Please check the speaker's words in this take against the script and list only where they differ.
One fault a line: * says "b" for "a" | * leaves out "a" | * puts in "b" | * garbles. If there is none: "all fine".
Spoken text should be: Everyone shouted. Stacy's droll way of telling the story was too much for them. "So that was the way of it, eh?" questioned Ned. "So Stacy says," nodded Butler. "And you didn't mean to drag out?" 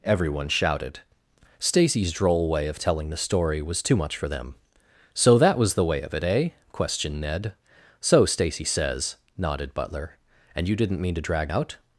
all fine